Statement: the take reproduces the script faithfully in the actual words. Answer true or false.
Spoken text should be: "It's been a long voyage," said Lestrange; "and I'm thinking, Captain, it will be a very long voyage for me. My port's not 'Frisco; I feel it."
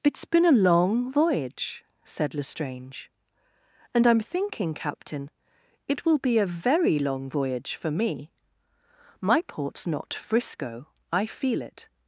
true